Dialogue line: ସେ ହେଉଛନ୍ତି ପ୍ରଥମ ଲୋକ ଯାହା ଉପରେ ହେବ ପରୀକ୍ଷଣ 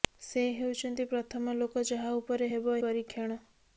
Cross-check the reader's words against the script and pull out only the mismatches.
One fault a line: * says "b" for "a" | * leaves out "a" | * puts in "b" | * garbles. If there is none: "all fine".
all fine